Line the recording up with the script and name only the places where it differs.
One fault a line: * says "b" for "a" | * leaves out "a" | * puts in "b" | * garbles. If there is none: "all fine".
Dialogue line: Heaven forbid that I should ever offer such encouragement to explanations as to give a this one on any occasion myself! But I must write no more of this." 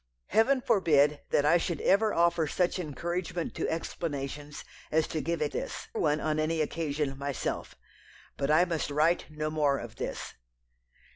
all fine